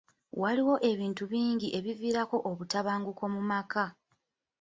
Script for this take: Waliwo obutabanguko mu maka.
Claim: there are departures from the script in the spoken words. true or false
true